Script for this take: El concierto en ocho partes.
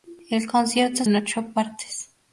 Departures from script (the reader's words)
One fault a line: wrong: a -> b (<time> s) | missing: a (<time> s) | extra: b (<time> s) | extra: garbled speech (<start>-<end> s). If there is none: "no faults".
no faults